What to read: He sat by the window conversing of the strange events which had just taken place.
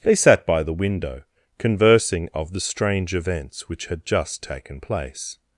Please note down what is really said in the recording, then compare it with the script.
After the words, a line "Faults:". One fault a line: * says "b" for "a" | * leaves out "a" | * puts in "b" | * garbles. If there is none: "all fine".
They sat by the window conversing of the strange events which had just taken place.
Faults:
* says "They" for "He"